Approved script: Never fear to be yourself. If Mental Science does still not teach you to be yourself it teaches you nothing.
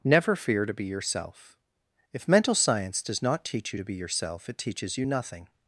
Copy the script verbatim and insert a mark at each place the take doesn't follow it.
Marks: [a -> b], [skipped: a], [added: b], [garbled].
Never fear to be yourself. If Mental Science does [skipped: still] not teach you to be yourself it teaches you nothing.